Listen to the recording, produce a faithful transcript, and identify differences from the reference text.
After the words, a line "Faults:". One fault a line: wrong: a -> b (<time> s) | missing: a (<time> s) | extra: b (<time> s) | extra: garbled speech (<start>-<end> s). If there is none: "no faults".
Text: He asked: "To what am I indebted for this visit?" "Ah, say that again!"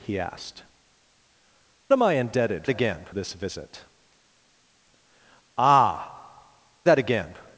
He asked: "Am I indebted again this visit?" "Ah, that again!"
Faults:
missing: To what (0.6 s)
wrong: for -> again (2.7 s)
missing: say (6.2 s)